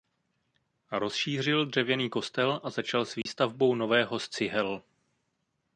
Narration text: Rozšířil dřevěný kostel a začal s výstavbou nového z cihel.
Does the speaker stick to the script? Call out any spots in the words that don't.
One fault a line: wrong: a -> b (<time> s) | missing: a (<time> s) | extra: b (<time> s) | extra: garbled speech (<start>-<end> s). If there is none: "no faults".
no faults